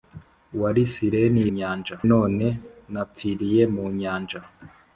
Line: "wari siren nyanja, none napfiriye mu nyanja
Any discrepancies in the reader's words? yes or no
no